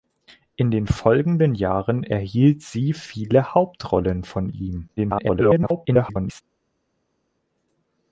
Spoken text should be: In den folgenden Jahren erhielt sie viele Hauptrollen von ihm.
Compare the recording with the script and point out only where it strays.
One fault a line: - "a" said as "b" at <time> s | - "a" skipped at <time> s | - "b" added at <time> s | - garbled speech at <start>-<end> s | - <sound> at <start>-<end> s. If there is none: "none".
- garbled speech at 5.0-6.4 s